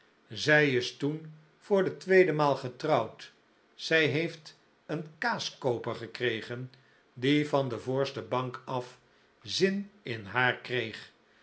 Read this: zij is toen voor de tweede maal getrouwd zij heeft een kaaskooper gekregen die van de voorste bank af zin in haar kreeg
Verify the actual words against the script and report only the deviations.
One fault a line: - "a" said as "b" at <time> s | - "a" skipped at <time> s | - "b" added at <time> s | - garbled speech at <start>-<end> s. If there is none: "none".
none